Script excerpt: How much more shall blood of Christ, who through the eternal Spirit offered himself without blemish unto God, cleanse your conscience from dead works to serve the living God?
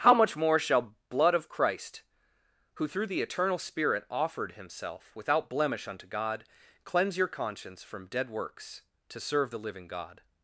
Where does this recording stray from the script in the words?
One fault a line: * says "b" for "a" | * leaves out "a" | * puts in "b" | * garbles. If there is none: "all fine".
all fine